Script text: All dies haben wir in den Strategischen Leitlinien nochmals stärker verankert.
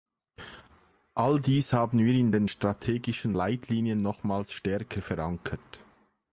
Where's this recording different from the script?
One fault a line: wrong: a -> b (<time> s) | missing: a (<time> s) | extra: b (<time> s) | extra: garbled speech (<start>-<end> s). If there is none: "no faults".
no faults